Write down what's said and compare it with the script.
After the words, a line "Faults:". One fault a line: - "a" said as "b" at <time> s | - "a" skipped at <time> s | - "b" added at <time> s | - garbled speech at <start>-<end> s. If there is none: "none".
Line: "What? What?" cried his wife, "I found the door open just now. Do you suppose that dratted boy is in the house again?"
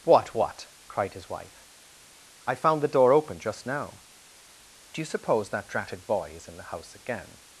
"What? What?" cried his wife, "I found the door open just now. Do you suppose that dratted boy is in the house again?"
Faults:
none